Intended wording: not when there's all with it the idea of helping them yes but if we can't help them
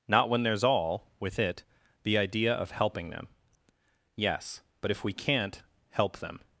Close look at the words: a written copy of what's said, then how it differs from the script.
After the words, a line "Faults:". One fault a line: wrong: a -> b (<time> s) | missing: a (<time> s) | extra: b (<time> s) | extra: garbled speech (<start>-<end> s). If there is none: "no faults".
not when there's all with it the idea of helping them yes but if we can't help them
Faults:
no faults